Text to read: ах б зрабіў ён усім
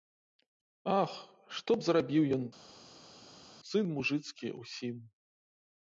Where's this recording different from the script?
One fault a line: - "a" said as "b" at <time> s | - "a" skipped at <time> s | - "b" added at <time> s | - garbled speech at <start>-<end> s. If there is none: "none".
- "што" added at 1.6 s
- "сын мужыцкі" added at 3.7 s